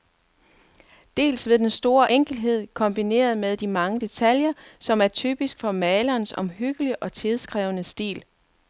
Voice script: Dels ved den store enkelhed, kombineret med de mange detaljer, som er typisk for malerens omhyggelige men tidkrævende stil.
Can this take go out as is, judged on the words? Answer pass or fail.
fail